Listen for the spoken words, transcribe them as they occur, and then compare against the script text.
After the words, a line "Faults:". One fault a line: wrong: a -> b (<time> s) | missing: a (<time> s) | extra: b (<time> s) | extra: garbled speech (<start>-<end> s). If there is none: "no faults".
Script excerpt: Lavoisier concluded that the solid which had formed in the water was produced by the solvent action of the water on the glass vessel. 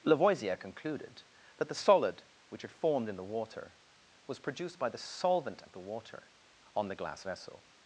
Lavoisier concluded that the solid which had formed in the water was produced by the solvent of the water on the glass vessel.
Faults:
missing: action (5.6 s)